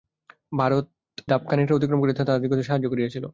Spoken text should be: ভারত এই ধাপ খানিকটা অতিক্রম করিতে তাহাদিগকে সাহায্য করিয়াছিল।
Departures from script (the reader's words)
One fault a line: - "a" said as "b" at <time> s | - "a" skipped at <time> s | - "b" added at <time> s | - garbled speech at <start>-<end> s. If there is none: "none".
- "এই" skipped at 0.8 s